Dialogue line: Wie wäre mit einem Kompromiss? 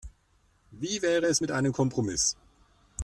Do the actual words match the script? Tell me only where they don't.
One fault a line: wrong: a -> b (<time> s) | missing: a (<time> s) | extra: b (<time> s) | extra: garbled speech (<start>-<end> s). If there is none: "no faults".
extra: es (1.3 s)